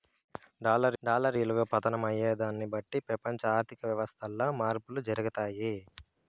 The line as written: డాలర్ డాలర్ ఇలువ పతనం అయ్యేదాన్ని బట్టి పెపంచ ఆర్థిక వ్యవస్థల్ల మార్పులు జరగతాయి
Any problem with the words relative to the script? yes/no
no